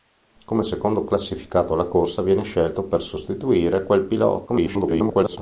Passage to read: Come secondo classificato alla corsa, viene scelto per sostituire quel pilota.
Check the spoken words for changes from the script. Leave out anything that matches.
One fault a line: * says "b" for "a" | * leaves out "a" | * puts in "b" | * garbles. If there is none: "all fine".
* garbles